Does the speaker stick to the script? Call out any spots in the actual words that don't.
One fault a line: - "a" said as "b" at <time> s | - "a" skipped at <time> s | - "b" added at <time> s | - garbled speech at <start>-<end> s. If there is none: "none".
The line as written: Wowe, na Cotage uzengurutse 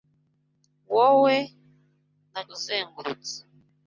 - "Cotage" skipped at 2.4 s